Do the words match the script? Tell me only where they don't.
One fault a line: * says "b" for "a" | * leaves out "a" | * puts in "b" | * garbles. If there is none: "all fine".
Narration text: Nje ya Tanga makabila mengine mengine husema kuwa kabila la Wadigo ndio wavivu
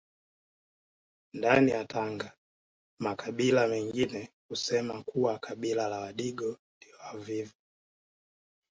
* says "Ndani" for "Nje"
* leaves out "mengine"